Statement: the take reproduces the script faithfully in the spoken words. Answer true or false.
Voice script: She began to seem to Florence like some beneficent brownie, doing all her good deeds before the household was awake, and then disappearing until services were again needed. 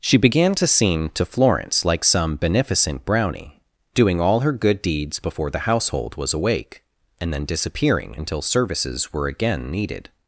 true